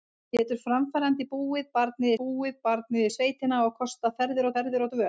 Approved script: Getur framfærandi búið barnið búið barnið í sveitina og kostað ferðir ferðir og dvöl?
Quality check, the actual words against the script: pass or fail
pass